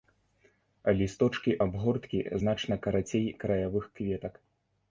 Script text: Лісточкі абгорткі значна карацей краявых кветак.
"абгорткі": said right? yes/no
yes